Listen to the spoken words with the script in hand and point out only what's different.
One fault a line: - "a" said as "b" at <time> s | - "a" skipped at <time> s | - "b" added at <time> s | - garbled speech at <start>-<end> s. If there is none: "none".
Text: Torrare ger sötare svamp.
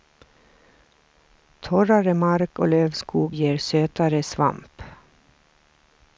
- "mark och lövskog" added at 2.1 s